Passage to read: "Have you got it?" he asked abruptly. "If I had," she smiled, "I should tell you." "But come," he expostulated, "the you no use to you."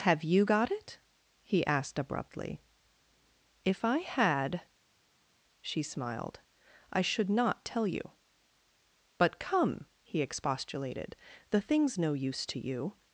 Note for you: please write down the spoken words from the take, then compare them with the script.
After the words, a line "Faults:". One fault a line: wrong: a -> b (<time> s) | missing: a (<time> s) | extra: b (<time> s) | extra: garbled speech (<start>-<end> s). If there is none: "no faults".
"Have you got it?" he asked abruptly. "If I had," she smiled, "I should not tell you." "But come," he expostulated, "the thing's no use to you."
Faults:
extra: not (7.3 s)
wrong: you -> thing's (11.6 s)